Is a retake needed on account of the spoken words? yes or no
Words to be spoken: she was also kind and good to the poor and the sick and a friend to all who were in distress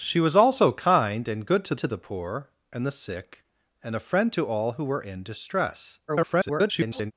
yes